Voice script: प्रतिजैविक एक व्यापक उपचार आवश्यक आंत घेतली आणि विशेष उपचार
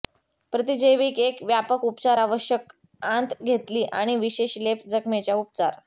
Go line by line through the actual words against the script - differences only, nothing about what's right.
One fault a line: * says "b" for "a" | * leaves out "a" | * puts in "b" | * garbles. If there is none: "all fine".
* puts in "लेप जखमेच्या"